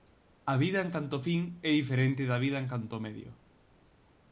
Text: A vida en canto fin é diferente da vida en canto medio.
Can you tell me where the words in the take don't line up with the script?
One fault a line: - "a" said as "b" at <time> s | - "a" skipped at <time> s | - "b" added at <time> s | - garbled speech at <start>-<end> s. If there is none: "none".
none